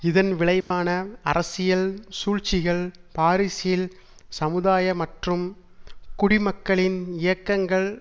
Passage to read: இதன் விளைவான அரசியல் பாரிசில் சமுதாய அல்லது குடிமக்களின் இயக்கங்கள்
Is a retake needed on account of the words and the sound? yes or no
yes